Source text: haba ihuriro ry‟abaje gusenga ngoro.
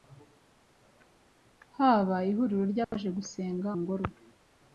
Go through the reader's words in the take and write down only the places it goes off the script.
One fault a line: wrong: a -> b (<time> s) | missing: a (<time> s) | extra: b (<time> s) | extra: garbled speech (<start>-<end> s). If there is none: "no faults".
no faults